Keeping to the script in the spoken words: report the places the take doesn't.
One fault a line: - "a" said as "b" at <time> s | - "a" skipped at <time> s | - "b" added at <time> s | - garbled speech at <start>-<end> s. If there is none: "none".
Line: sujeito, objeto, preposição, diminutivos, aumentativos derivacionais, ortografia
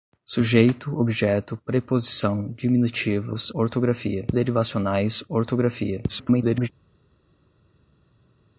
- "aumentativos" said as "ortografia" at 3.5 s
- garbled speech at 6.1-6.7 s